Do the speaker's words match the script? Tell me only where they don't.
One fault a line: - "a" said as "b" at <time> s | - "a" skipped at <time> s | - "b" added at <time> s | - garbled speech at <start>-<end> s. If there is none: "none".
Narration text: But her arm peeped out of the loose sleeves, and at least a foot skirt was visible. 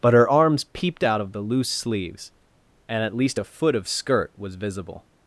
- "arm" said as "arms" at 0.3 s
- "of" added at 3.7 s